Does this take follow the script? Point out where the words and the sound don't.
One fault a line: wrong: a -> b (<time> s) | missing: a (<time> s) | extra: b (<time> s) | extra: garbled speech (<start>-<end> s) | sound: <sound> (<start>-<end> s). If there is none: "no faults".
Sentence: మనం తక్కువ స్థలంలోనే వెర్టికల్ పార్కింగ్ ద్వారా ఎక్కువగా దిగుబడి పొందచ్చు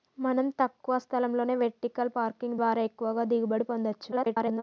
extra: garbled speech (4.1-4.6 s)